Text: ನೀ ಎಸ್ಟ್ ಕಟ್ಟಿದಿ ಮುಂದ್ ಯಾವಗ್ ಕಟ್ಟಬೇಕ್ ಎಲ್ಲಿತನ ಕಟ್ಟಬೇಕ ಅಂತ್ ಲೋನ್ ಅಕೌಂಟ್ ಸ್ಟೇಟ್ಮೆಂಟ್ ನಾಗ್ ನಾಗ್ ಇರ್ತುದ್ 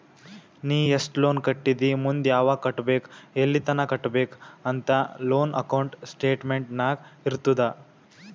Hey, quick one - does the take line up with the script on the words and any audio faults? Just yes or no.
no